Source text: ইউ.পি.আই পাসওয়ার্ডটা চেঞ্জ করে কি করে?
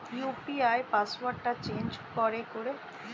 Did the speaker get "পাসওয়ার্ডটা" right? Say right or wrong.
right